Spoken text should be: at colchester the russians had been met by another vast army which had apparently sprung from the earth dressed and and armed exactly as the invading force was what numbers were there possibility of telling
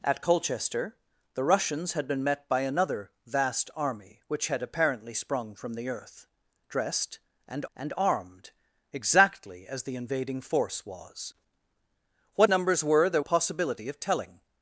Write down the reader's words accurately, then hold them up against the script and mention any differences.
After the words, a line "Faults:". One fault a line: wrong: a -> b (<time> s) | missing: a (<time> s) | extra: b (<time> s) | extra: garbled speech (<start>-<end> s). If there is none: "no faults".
at colchester the russians had been met by another vast army which had apparently sprung from the earth dressed and and armed exactly as the invading force was what numbers were there possibility of telling
Faults:
no faults